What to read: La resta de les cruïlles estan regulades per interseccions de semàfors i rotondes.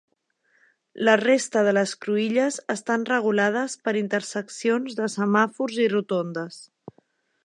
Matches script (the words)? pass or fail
pass